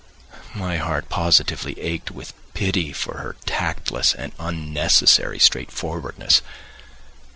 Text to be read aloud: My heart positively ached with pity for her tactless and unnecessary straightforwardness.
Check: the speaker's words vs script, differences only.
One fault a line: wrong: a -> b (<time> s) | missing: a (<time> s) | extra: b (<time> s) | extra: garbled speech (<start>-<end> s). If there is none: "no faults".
no faults